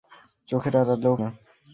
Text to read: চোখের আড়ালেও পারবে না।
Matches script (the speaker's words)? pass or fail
fail